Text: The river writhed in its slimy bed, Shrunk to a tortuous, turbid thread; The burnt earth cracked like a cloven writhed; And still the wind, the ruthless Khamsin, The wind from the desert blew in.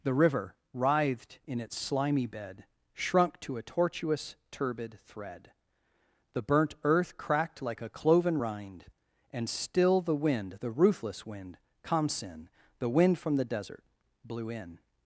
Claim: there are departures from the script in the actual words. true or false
true